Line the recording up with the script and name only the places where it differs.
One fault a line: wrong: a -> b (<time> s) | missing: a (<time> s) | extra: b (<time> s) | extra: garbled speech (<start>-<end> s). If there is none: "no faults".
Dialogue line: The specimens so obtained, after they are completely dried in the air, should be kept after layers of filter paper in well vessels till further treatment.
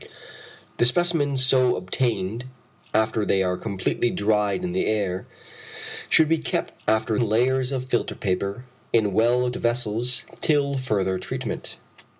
no faults